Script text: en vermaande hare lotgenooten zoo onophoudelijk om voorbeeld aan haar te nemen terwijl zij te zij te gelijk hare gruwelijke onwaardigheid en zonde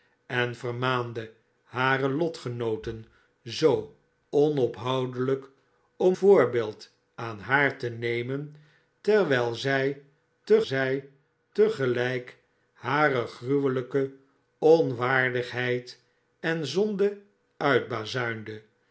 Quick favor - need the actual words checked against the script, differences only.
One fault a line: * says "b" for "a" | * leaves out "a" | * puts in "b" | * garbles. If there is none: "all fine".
all fine